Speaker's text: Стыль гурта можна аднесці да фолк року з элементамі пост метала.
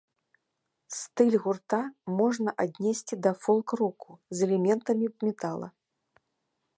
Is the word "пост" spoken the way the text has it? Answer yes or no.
no